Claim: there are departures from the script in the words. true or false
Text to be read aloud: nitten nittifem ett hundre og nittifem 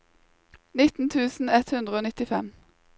true